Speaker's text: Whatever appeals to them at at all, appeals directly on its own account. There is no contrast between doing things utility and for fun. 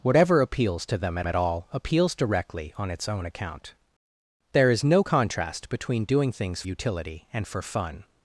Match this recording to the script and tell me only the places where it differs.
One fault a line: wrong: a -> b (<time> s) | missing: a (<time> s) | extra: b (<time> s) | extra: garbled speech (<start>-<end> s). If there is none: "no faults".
no faults